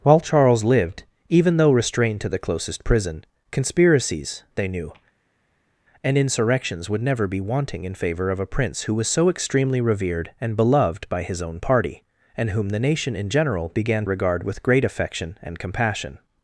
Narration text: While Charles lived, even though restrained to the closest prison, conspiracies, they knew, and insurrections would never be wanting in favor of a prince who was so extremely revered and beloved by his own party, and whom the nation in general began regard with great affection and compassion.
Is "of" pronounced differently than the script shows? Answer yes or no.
no